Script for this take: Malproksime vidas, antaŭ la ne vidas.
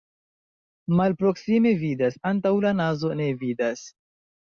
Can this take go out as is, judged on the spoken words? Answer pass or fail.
fail